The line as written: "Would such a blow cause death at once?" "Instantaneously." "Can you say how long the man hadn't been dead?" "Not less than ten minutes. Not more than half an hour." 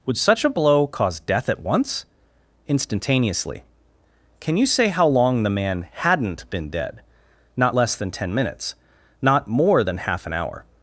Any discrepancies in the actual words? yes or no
no